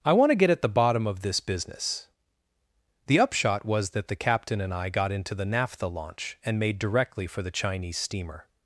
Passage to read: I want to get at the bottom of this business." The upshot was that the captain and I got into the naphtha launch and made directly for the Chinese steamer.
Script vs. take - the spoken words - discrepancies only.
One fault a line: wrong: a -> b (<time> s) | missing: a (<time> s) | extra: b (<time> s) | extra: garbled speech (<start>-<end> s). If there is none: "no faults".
no faults